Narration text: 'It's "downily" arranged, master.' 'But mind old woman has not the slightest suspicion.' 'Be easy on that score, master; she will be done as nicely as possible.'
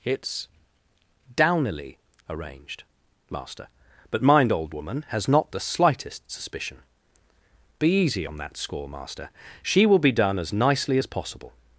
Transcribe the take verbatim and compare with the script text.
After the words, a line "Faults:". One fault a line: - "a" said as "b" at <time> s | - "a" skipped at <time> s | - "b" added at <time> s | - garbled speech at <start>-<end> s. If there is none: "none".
'It's "downily" arranged, master.' 'But mind old woman has not the slightest suspicion.' 'Be easy on that score, master; she will be done as nicely as possible.'
Faults:
none